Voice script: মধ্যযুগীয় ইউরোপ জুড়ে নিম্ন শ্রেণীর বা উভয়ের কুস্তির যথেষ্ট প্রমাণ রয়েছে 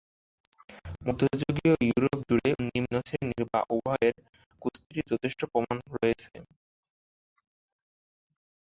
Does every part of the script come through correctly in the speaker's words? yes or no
yes